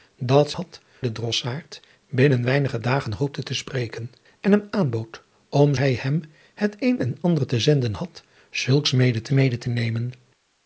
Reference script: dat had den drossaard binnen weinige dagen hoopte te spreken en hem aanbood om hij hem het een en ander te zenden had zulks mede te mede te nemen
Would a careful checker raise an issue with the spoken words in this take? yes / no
no